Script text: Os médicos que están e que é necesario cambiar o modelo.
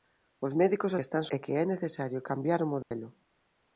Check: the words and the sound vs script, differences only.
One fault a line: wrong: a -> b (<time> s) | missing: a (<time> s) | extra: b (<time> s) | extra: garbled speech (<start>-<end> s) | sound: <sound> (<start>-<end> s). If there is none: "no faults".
sound: dropout (2.8-2.9 s)